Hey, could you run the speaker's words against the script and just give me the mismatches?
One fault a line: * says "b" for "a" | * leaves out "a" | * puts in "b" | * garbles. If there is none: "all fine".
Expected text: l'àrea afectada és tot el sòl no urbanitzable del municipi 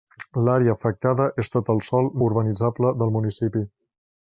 * leaves out "no"